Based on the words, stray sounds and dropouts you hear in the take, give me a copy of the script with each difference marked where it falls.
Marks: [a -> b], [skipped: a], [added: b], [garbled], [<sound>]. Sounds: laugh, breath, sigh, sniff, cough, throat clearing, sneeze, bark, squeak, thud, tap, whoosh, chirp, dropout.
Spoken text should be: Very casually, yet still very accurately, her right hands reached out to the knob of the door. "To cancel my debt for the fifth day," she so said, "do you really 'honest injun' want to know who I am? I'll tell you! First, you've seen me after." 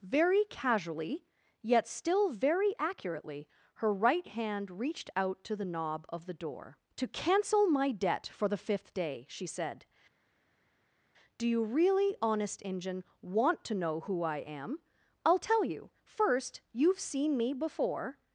Very casually, yet still very accurately, her right [hands -> hand] reached out to the knob of the door. "To cancel my debt for the fifth day," she [skipped: so] said, "do you really 'honest injun' want to know who I am? I'll tell you! First, you've seen me [after." -> before]